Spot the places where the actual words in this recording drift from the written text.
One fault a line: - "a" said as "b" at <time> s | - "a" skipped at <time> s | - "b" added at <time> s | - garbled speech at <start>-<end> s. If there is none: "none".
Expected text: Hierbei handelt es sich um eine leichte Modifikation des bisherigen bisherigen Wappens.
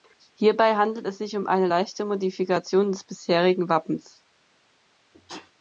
- "bisherigen" skipped at 3.7 s